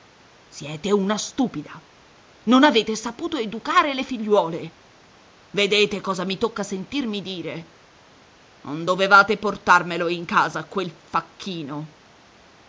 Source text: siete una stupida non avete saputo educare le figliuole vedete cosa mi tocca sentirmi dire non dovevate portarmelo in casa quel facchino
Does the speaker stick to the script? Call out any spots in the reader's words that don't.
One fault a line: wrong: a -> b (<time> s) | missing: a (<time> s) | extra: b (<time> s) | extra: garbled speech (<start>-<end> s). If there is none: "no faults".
no faults